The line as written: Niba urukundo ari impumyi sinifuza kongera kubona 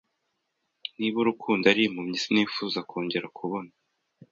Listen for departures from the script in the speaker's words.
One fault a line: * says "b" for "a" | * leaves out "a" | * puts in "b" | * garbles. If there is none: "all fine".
all fine